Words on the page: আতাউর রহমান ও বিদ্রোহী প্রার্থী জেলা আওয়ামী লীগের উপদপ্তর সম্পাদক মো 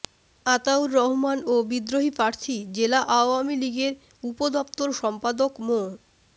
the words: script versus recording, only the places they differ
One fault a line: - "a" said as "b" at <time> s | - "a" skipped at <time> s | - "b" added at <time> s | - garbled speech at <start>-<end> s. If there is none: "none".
none